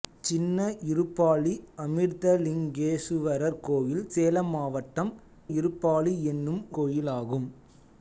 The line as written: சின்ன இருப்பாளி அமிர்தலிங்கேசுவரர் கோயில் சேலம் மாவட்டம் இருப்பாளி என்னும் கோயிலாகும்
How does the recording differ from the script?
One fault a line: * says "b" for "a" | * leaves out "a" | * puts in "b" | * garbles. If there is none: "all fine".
all fine